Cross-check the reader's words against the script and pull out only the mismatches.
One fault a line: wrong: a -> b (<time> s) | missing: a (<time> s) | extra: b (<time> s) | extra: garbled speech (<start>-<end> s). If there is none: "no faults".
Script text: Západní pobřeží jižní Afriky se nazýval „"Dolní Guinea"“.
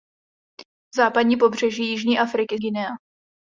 missing: se nazýval Dolní (2.6 s)